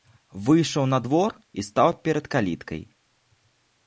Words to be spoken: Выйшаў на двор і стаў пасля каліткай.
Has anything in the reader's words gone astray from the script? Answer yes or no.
yes